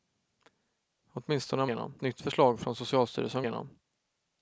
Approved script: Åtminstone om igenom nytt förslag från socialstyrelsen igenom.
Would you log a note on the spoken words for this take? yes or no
no